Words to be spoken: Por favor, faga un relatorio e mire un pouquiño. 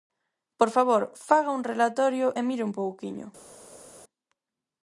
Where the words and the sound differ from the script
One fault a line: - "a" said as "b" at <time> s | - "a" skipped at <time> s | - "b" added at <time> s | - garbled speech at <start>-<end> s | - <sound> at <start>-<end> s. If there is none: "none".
none